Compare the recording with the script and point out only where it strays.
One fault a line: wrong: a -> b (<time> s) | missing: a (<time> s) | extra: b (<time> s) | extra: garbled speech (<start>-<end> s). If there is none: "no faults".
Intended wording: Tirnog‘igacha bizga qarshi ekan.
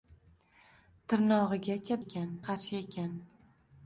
wrong: bizga -> ekan (2.0 s)